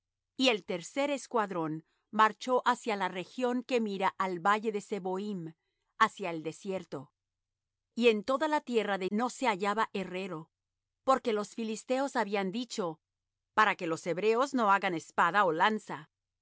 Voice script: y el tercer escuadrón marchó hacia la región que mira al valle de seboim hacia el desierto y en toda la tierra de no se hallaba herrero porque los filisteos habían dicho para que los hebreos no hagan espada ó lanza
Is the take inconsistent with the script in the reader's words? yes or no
no